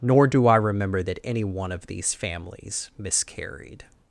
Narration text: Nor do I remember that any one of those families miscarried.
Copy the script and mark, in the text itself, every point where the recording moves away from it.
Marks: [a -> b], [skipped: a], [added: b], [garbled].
Nor do I remember that any one of [those -> these] families miscarried.